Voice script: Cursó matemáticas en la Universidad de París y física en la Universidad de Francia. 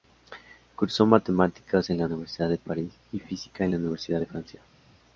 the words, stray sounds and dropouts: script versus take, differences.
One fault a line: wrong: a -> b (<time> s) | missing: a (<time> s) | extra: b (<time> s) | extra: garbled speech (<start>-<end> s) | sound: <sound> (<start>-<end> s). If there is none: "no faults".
no faults